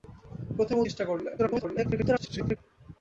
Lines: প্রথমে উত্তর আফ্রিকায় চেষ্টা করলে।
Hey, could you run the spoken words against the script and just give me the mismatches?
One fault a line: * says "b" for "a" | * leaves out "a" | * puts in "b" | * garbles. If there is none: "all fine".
* leaves out "উত্তর আফ্রিকায়"
* garbles